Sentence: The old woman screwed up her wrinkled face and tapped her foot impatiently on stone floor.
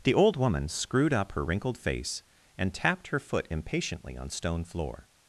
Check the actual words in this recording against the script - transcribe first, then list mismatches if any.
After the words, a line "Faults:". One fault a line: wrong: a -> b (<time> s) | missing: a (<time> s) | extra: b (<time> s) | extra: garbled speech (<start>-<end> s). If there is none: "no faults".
The old woman screwed up her wrinkled face and tapped her foot impatiently on stone floor.
Faults:
no faults